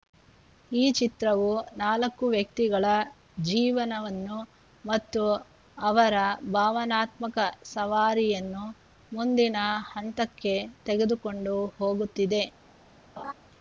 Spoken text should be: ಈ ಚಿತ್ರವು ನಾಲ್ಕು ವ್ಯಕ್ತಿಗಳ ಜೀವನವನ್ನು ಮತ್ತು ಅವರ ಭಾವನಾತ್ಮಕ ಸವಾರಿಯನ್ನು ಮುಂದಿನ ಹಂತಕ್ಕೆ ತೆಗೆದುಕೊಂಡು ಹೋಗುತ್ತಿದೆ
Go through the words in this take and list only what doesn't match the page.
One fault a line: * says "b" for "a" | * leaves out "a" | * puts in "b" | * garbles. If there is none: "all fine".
all fine